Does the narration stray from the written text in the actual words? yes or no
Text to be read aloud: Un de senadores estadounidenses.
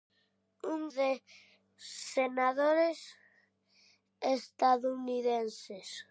no